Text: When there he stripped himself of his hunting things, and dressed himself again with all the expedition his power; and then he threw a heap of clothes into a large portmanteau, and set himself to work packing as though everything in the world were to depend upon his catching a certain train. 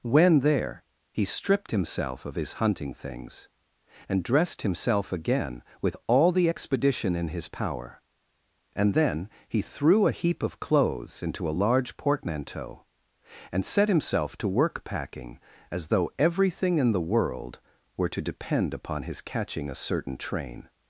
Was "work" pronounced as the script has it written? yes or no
yes